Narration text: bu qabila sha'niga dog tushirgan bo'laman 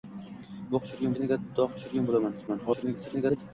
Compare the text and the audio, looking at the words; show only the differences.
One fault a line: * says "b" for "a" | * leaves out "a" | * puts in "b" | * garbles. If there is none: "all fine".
* says "tushirgan" for "qabila"
* garbles